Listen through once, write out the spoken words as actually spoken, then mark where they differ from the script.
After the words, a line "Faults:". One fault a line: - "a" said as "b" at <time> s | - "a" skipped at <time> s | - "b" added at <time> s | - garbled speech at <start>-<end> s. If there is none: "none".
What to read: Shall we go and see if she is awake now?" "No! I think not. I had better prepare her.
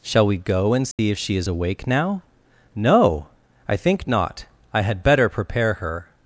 Shall we go and see if she is awake now?" "No! I think not. I had better prepare her.
Faults:
none